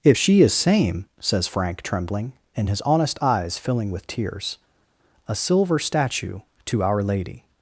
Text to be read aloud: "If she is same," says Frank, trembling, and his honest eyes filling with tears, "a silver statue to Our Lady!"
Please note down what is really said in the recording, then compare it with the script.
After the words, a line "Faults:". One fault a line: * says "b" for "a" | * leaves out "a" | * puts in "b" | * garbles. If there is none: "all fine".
"If she is same," says Frank, trembling, and his honest eyes filling with tears, "a silver statue to Our Lady!"
Faults:
all fine